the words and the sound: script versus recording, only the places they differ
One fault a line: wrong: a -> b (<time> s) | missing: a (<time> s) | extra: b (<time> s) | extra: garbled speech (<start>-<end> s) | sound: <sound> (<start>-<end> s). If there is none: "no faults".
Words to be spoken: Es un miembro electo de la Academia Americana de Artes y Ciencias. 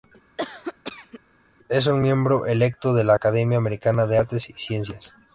sound: cough (0.4-1.2 s)